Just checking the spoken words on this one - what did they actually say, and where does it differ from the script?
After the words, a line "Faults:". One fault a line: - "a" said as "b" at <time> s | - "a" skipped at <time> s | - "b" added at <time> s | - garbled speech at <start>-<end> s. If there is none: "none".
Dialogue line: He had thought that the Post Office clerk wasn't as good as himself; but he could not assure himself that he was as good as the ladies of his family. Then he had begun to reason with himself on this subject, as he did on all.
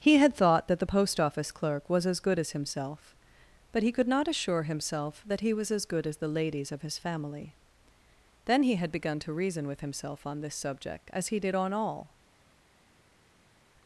He had thought that the Post Office clerk was as good as himself; but he could not assure himself that he was as good as the ladies of his family. Then he had begun to reason with himself on this subject, as he did on all.
Faults:
- "wasn't" said as "was" at 1.9 s